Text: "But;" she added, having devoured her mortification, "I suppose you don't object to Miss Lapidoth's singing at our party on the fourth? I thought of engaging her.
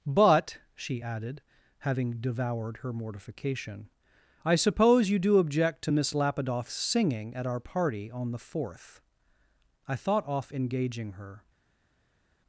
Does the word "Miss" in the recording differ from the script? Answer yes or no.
no